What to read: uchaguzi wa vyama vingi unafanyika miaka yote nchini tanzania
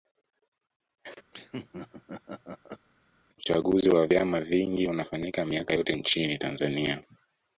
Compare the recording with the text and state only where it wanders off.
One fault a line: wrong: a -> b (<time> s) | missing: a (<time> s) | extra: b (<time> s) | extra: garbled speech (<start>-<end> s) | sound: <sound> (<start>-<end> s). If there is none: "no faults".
sound: laugh (1.3-2.9 s)